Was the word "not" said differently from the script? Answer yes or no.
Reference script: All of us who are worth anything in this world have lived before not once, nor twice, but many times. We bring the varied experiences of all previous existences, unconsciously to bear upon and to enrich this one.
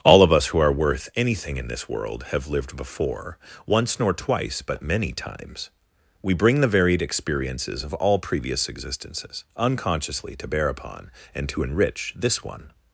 yes